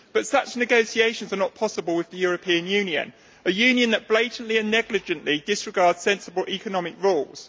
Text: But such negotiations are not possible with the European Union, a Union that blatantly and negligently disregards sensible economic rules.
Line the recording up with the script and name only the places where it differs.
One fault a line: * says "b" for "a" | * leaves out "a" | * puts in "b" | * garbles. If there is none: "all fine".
all fine